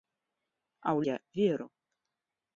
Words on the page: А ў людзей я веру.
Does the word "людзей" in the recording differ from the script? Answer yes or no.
yes